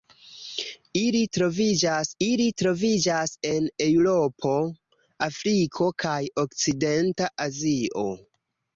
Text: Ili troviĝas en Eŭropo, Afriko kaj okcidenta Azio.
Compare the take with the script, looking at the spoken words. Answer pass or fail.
fail